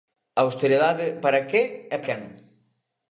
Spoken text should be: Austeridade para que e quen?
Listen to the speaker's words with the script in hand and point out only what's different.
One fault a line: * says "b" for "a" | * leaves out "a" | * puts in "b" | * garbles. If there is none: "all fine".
all fine